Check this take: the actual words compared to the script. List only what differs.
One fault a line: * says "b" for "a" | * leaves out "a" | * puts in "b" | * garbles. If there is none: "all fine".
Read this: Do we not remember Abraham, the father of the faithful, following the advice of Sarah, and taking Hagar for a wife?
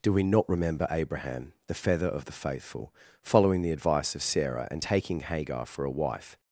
* says "feather" for "father"